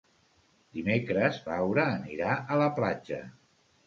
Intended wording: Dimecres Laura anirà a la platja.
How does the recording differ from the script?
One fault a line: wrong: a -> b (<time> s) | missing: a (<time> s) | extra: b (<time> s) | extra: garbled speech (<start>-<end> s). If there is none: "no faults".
no faults